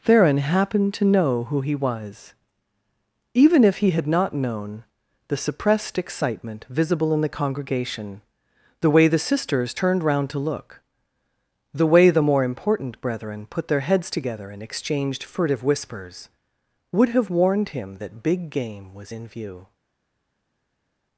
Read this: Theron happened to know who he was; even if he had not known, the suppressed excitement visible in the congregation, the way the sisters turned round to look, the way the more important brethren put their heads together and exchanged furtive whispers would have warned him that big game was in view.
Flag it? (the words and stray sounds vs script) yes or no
no